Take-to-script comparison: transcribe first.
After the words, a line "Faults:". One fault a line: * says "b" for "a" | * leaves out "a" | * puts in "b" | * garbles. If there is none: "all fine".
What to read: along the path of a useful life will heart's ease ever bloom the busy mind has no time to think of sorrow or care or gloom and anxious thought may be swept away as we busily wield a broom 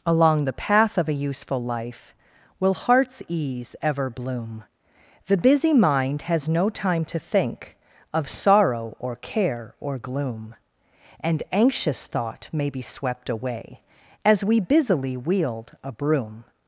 along the path of a useful life will heart's ease ever bloom the busy mind has no time to think of sorrow or care or gloom and anxious thought may be swept away as we busily wield a broom
Faults:
all fine